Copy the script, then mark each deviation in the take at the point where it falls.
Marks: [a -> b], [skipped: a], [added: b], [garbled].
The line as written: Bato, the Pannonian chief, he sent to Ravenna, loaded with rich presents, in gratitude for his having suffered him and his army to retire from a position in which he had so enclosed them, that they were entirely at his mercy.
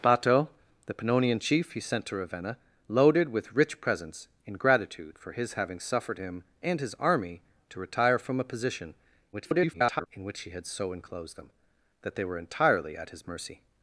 Bato, the Pannonian chief, he sent to Ravenna, loaded with rich presents, in gratitude for his having suffered him and his army to retire from a position [garbled] in which he had so enclosed them, that they were entirely at his mercy.